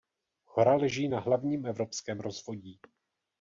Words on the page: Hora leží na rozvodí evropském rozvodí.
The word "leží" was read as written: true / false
true